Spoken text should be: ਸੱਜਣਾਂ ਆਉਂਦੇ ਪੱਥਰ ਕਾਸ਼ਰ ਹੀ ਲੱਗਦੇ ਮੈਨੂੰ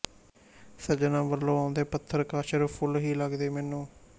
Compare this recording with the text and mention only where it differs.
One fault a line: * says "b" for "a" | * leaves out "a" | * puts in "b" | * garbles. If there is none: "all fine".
* puts in "ਵੱਲੋਂ"
* puts in "ਫੁੱਲ"